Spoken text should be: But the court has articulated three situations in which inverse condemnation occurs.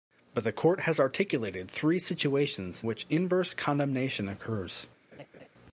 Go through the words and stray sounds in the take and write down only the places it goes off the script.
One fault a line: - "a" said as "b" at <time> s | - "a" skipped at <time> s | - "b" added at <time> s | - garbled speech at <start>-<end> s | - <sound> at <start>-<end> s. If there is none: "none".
- "in" skipped at 2.8 s
- laugh at 5.1-5.5 s